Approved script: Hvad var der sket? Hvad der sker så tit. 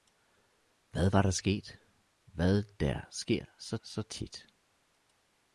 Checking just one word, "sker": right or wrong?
right